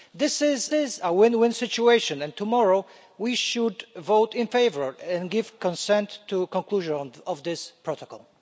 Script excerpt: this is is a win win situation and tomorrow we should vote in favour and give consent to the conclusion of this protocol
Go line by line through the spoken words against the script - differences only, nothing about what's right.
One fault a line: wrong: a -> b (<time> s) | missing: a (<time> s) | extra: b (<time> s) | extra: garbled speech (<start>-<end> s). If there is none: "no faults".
no faults